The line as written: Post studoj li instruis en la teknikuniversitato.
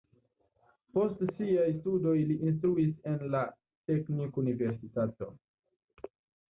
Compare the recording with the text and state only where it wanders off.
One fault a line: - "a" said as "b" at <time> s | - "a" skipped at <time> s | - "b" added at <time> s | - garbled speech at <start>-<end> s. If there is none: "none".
- "siaj" added at 1.4 s